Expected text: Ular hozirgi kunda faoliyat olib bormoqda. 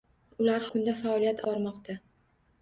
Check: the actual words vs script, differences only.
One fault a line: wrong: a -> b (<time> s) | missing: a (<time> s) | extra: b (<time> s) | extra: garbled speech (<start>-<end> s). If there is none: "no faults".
missing: hozirgi (0.6 s)
missing: olib (1.4 s)